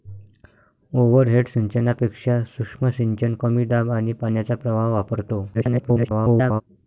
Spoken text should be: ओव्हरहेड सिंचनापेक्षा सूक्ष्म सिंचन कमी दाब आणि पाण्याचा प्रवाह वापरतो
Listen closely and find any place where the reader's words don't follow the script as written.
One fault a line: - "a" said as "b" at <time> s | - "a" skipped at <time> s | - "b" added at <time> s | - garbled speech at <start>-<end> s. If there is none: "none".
- garbled speech at 5.5-6.6 s